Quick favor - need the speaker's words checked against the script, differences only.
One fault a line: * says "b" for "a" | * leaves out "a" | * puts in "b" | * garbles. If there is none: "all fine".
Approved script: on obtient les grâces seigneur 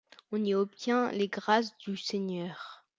* puts in "y"
* puts in "du"